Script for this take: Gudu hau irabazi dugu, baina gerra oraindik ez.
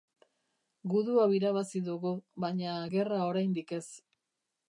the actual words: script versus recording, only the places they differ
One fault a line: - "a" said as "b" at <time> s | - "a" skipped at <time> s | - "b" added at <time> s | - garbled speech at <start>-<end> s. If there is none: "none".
none